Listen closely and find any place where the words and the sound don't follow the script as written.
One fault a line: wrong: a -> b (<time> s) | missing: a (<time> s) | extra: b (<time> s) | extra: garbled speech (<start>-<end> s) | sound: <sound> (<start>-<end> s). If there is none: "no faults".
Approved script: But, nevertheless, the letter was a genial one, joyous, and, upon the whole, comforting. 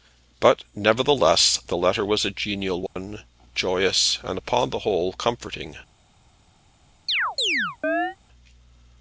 sound: dropout (2.9-3.0 s)
sound: chirp (7.1-8.2 s)